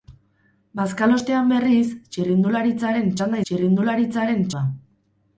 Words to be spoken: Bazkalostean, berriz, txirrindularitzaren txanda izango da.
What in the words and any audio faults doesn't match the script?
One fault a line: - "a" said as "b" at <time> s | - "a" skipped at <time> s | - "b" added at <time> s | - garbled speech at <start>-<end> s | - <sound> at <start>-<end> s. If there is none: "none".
- "izango" said as "txirrindularitzaren" at 3.5 s